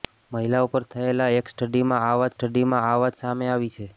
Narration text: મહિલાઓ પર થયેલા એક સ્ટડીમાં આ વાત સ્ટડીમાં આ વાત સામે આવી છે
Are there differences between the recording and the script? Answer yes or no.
no